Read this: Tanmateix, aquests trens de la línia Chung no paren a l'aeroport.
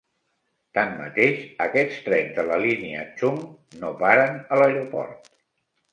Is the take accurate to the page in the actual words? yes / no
yes